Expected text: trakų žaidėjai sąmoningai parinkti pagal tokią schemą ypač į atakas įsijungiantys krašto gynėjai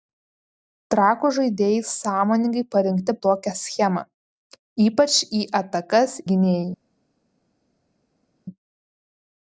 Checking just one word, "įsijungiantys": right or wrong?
wrong